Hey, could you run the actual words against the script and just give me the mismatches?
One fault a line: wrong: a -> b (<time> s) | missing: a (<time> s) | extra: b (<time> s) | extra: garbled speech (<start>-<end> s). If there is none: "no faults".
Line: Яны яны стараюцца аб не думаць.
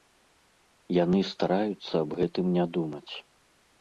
missing: яны (1.2 s)
extra: гэтым (2.2 s)